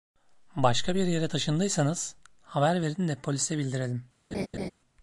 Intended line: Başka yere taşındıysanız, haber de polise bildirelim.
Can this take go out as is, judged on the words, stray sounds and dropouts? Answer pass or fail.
fail